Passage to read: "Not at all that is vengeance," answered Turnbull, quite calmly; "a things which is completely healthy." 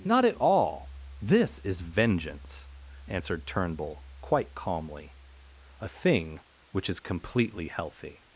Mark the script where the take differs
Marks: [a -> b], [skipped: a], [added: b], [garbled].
"Not at all [that -> this] is vengeance," answered Turnbull, quite calmly; "a [things -> thing] which is completely healthy."